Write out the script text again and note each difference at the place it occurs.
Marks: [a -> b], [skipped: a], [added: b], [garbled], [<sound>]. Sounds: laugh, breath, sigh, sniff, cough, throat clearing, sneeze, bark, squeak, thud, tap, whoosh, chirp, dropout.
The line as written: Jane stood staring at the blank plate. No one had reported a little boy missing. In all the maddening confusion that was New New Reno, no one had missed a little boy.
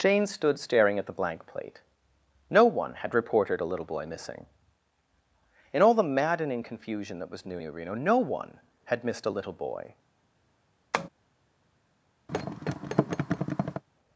Jane stood staring at the blank plate. No one had reported a little boy missing. In all the maddening confusion that was New New Reno, no one had missed a little boy. [tap] [thud]